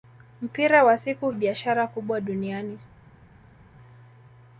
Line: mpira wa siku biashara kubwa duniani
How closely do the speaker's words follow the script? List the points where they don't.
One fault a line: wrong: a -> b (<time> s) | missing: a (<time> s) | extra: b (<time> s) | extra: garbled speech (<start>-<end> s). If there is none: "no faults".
no faults